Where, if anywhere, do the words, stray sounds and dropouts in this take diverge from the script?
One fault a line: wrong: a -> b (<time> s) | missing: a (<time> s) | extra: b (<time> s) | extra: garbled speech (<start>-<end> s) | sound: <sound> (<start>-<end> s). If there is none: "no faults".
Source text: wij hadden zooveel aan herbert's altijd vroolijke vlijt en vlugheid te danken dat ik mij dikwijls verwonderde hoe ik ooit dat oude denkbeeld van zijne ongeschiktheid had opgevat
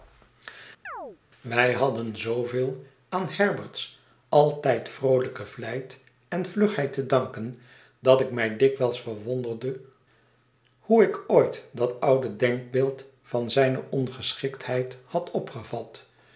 sound: chirp (0.8-1.2 s)